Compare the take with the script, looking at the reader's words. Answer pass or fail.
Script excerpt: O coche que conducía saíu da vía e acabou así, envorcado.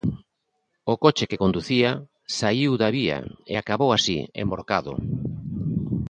pass